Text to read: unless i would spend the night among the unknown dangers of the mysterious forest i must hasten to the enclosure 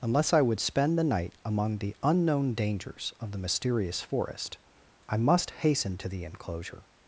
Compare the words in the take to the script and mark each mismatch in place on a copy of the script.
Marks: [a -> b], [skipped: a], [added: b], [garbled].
unless i would spend the night among the unknown dangers of the mysterious forest i must hasten to the enclosure